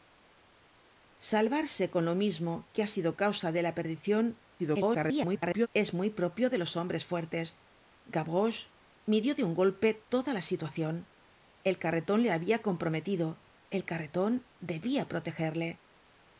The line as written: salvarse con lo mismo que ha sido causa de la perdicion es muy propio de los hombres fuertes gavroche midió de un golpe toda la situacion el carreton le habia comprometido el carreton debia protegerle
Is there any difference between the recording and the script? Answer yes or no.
yes